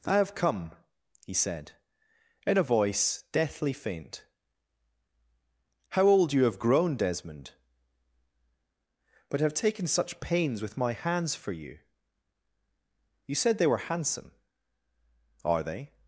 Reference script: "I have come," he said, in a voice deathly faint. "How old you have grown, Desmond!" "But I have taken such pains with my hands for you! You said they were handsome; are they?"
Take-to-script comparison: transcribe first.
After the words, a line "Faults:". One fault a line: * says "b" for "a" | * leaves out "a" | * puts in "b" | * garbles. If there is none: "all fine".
"I have come," he said, in a voice deathly faint. "How old you have grown, Desmond!" "But have taken such pains with my hands for you! You said they were handsome; are they?"
Faults:
* leaves out "I"